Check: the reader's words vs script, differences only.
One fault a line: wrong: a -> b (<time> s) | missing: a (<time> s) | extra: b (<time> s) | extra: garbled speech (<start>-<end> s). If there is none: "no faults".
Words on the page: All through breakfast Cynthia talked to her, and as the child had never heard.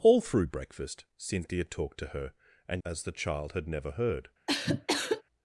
no faults